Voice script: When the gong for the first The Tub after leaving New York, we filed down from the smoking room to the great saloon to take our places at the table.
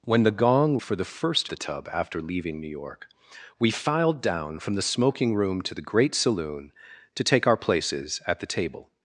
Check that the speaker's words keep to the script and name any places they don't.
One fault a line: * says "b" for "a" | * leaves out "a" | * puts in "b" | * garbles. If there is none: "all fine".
all fine